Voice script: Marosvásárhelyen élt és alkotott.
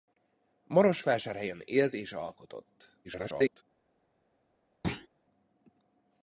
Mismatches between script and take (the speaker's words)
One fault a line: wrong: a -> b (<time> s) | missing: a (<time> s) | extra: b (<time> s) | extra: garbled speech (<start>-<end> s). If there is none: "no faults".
extra: garbled speech (3.0-3.6 s)